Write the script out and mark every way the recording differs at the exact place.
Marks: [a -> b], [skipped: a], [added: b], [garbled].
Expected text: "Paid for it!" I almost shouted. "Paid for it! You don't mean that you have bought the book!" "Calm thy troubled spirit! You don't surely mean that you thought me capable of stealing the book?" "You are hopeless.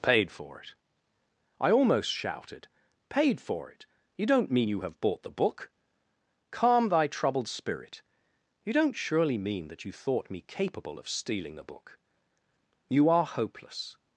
"Paid for it!" I almost shouted. "Paid for it! You don't mean [skipped: that] you have bought the book!" "Calm thy troubled spirit! You don't surely mean that you thought me capable of stealing the book?" "You are hopeless.